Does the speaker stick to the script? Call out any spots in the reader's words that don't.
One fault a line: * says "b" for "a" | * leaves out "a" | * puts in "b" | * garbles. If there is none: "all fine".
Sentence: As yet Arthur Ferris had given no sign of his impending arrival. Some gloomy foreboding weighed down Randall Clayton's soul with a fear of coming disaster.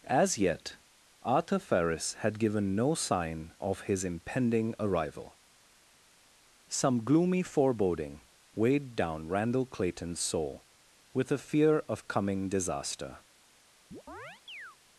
all fine